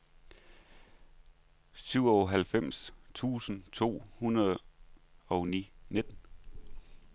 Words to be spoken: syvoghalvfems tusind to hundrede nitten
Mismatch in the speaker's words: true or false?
true